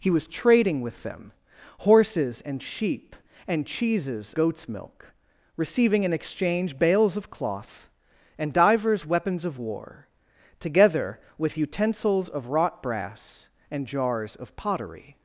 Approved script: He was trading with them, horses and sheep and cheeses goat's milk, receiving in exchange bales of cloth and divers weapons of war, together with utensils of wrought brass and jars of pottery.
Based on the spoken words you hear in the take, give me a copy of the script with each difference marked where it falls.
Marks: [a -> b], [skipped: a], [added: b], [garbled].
He was trading with them, horses and sheep and cheeses goat's milk, receiving in exchange bales of cloth and divers weapons of war, together with utensils of wrought brass and jars of pottery.